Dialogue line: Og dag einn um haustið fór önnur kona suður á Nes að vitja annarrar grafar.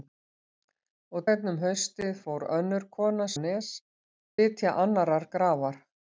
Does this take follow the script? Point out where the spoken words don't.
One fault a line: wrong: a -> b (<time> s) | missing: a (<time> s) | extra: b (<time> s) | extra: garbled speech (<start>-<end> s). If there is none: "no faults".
missing: dag (1.3 s)
missing: suður (3.3 s)
missing: að (3.7 s)